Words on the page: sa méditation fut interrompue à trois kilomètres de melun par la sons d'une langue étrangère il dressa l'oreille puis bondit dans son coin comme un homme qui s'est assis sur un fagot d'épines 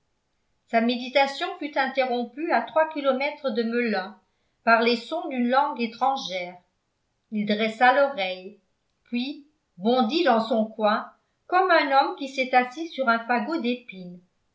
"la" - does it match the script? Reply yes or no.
no